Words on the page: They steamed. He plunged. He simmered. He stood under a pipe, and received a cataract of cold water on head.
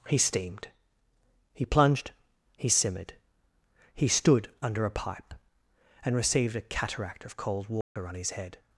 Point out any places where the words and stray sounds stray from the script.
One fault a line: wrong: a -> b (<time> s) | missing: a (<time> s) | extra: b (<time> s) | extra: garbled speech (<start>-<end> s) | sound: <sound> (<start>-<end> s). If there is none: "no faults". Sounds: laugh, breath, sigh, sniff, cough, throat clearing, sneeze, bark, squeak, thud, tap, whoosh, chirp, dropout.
wrong: They -> He (0.1 s)
sound: dropout (7.8-8.0 s)
extra: his (8.1 s)